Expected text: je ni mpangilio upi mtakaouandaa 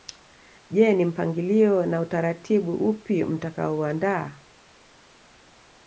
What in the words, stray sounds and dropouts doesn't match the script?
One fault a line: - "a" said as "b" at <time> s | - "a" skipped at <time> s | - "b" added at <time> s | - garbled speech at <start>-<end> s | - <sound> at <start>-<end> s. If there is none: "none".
- "na utaratibu" added at 1.9 s